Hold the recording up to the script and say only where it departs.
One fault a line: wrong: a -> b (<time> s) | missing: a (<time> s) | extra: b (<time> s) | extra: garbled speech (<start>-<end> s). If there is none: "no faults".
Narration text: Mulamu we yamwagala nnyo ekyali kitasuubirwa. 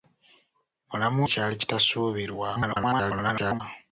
missing: we yamwagala nnyo (1.2 s)
extra: garbled speech (2.5-3.6 s)